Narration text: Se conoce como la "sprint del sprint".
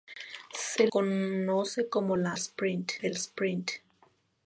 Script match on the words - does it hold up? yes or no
yes